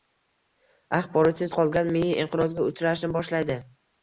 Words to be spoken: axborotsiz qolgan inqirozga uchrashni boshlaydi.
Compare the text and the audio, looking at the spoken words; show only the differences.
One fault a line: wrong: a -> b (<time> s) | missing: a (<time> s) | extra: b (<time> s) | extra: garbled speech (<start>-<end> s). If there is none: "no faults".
extra: miya (2.0 s)